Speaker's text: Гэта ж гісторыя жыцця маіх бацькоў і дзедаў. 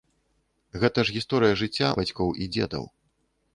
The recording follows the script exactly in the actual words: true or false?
false